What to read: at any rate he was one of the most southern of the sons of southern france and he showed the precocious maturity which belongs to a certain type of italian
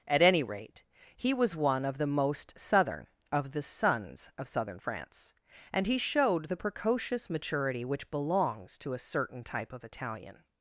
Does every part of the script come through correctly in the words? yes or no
yes